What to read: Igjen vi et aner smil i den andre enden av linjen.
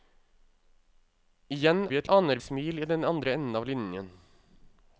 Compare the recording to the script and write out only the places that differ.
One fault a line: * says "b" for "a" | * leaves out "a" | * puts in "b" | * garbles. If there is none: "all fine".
all fine